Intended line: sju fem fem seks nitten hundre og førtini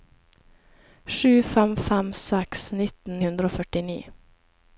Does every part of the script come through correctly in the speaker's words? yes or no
yes